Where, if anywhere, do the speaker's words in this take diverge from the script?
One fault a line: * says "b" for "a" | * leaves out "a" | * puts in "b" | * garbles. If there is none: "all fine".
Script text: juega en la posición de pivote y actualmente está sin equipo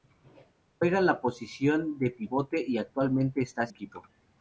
* leaves out "sin"